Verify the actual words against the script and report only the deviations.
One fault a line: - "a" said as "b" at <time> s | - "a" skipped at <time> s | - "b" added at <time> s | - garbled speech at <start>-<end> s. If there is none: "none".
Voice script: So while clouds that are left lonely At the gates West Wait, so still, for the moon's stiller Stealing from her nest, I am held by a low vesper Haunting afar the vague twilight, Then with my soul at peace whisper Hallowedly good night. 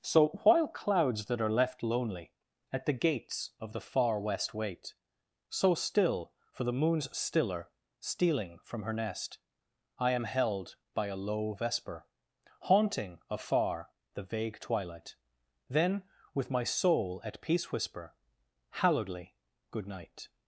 - "of the far" added at 3.6 s